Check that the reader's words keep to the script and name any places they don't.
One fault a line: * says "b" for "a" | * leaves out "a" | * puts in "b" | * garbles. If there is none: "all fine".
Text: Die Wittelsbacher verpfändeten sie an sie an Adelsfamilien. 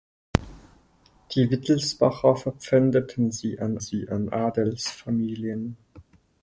all fine